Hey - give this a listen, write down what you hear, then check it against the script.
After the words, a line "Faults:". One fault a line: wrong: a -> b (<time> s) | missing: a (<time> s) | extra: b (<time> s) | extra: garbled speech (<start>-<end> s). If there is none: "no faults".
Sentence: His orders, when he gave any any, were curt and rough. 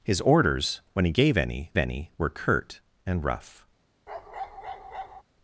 His orders, when he gave any any, were curt and rough.
Faults:
no faults